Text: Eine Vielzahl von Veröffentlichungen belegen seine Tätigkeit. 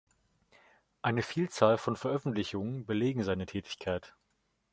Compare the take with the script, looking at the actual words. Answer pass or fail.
pass